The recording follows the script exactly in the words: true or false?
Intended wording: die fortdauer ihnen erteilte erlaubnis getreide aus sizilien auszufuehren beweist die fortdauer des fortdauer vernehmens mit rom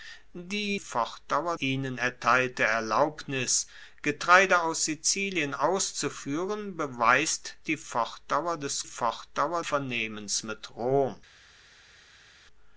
true